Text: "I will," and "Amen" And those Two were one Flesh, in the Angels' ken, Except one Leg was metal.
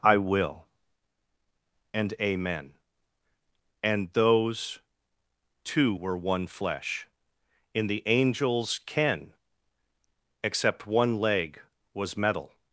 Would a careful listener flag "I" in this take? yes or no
no